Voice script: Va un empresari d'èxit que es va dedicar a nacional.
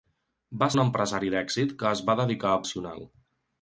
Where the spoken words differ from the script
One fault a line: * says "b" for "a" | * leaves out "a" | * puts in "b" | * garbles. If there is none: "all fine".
all fine